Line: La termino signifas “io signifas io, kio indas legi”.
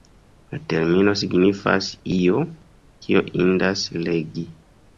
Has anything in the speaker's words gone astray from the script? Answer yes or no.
yes